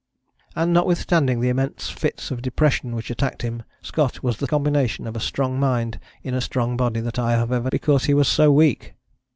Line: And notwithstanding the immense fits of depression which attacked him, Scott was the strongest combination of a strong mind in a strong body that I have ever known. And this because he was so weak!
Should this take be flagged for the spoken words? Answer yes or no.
yes